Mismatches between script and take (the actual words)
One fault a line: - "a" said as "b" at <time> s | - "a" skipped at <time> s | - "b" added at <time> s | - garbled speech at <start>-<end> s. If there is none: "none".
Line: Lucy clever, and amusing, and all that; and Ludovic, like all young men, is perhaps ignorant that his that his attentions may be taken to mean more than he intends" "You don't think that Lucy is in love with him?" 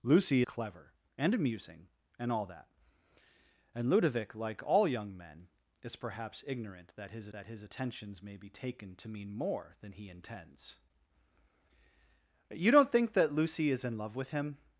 none